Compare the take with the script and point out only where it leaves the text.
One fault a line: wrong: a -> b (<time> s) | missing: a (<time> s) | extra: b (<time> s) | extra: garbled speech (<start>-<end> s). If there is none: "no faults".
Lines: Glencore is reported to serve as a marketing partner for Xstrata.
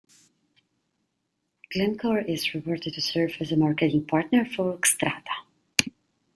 no faults